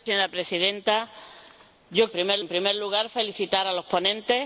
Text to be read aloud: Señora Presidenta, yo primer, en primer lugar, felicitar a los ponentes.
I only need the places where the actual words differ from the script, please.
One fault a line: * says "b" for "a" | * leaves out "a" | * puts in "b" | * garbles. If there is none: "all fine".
all fine